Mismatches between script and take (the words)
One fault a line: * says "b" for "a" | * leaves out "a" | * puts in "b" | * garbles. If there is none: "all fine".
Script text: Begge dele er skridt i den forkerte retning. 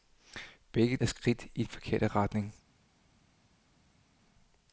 * leaves out "dele"
* leaves out "den"